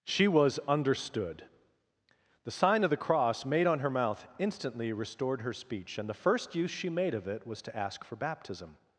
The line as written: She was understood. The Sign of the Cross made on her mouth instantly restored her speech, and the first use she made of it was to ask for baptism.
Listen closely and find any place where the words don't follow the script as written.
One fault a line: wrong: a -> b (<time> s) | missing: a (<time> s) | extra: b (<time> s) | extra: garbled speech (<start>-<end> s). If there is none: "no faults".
no faults